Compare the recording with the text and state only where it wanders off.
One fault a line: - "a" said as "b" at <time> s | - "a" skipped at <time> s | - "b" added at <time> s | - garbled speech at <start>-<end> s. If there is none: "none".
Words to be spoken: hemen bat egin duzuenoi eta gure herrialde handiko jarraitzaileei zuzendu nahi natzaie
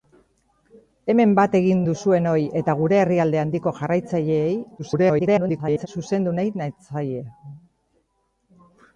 - garbled speech at 4.8-5.9 s